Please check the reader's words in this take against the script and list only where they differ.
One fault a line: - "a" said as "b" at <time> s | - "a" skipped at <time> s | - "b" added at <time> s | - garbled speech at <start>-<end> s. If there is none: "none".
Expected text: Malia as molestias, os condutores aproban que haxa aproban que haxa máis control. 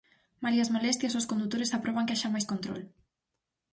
- "aproban que haxa" skipped at 2.3 s